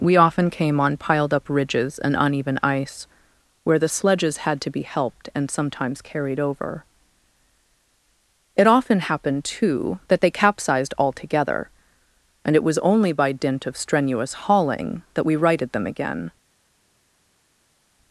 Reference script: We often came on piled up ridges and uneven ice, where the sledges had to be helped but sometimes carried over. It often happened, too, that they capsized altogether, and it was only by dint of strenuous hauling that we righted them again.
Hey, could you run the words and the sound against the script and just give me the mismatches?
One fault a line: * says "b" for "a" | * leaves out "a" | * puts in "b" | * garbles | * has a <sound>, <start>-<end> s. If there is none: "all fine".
* says "and" for "but"